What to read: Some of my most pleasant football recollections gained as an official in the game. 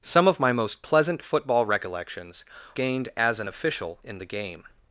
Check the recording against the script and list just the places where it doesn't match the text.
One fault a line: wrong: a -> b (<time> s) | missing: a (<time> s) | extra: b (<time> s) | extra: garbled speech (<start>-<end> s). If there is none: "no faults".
no faults